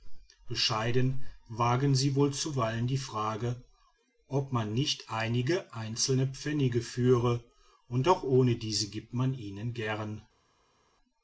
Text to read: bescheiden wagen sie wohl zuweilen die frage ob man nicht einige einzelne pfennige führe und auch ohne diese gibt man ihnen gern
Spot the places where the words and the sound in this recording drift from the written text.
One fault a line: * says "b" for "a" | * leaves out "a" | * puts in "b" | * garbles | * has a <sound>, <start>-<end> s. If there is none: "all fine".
all fine